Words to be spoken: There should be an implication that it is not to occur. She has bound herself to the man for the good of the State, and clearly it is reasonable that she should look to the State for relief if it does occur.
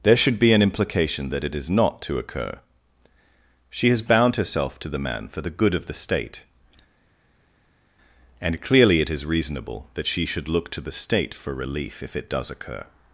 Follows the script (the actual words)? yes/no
yes